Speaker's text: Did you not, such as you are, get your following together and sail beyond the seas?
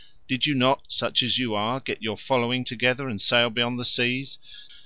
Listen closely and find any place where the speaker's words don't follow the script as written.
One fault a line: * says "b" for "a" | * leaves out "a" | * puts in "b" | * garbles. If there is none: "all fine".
all fine